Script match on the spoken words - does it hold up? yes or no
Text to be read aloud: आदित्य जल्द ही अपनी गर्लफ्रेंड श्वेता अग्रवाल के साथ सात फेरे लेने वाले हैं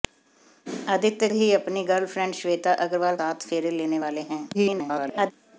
no